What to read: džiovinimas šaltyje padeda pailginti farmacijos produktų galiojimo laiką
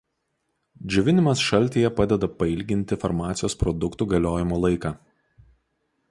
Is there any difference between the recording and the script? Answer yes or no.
no